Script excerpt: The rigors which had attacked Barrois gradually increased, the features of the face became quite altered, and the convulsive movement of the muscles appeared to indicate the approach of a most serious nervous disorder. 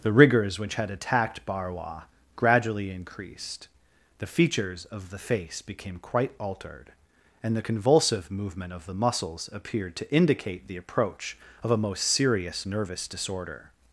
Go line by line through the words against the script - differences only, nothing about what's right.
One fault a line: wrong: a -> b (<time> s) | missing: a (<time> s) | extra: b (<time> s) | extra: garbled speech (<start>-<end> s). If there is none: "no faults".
no faults